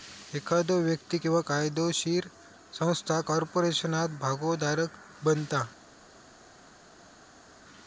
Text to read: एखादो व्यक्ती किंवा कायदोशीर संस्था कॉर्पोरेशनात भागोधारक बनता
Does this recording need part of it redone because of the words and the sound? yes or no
no